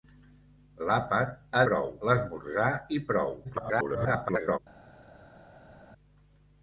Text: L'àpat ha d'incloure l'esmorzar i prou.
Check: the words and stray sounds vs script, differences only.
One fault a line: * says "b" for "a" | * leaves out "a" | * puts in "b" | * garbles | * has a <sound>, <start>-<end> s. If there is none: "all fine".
* says "prou" for "d'incloure"
* garbles